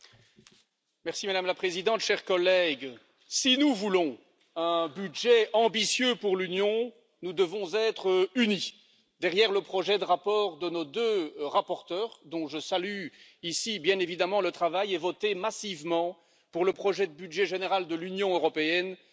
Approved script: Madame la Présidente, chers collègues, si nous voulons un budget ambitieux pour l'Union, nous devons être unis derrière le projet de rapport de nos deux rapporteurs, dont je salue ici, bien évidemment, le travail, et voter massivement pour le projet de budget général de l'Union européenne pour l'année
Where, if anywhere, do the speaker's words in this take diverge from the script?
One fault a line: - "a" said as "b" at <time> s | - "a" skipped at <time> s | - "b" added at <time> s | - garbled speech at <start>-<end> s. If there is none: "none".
none